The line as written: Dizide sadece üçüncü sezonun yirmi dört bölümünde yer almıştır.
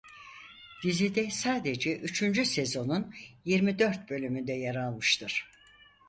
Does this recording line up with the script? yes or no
yes